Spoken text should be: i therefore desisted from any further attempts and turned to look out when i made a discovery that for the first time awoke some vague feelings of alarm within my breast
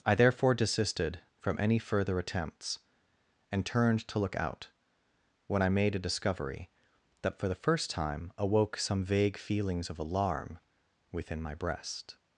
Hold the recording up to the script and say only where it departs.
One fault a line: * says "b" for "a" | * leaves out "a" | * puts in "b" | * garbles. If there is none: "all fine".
all fine